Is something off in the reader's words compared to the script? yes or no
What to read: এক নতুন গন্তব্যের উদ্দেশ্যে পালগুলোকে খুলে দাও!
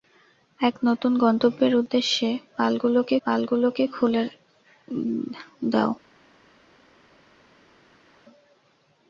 yes